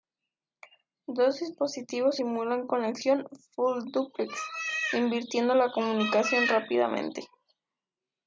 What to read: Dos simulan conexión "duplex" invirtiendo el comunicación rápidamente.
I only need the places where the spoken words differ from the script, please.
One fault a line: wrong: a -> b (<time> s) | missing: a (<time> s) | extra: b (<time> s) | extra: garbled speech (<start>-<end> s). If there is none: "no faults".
extra: dispositivos (1.4 s)
extra: full (3.6 s)
wrong: el -> la (5.5 s)